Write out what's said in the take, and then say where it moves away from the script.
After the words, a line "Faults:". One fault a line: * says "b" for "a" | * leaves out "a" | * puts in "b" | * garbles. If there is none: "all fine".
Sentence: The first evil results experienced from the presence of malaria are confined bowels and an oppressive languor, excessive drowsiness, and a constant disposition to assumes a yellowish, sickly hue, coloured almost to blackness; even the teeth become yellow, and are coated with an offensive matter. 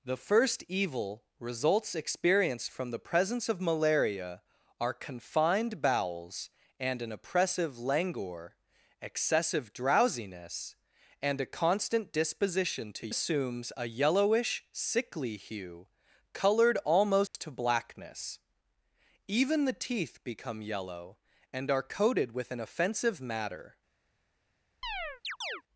The first evil results experienced from the presence of malaria are confined bowels and an oppressive languor, excessive drowsiness, and a constant disposition to assumes a yellowish, sickly hue, coloured almost to blackness; even the teeth become yellow, and are coated with an offensive matter.
Faults:
all fine